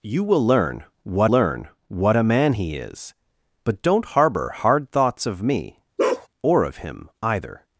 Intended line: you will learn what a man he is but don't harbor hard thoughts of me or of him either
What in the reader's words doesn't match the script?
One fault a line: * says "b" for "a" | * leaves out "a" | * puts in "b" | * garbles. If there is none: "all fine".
* puts in "learn what"